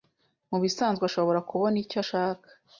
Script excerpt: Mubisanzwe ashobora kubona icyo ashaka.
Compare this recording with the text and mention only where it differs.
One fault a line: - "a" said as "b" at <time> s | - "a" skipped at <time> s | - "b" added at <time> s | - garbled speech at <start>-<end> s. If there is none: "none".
none